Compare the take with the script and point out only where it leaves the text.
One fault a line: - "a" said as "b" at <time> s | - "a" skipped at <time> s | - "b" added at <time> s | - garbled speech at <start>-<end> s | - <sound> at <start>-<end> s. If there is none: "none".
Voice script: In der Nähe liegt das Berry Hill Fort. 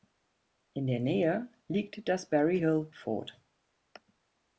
none